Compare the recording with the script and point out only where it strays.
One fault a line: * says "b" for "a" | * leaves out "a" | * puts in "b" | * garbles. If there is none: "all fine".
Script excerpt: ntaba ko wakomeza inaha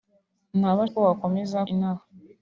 all fine